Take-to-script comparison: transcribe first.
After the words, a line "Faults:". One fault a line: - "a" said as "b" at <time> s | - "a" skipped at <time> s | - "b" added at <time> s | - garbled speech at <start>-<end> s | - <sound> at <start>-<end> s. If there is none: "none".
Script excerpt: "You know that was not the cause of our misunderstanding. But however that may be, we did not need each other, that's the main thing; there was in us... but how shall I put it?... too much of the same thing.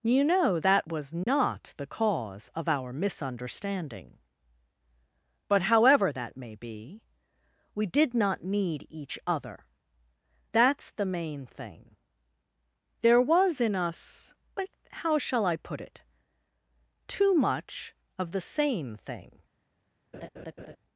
"You know that was not the cause of our misunderstanding. But however that may be, we did not need each other, that's the main thing; there was in us... but how shall I put it?... too much of the same thing.
Faults:
- dropout at 1.2-1.3 s
- laugh at 20.1-20.8 s